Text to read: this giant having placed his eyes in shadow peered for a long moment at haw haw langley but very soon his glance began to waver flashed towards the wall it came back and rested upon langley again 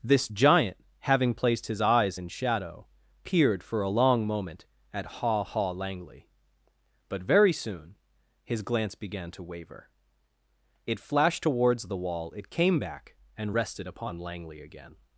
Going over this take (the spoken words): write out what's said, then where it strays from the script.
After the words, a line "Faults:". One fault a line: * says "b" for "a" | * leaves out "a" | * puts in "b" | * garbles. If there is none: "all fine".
this giant having placed his eyes in shadow peered for a long moment at haw haw langley but very soon his glance began to waver it flashed towards the wall it came back and rested upon langley again
Faults:
* puts in "it"